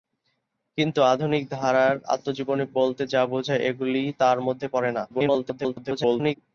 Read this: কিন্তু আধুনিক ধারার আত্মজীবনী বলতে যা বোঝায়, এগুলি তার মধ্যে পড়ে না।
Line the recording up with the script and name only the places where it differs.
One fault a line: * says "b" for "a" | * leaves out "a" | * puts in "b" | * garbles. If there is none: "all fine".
* garbles